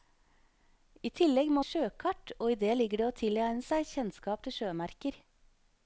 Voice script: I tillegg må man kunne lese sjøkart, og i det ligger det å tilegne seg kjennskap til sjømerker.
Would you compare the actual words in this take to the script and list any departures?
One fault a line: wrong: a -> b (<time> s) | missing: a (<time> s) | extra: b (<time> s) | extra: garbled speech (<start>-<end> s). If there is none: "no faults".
missing: man kunne lese (1.6 s)